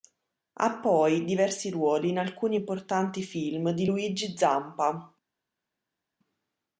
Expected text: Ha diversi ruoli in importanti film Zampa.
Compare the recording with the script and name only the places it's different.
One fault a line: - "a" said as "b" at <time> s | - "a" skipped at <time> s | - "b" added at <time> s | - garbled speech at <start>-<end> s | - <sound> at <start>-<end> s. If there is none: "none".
- "poi" added at 0.8 s
- "alcuni" added at 2.2 s
- "di Luigi" added at 3.7 s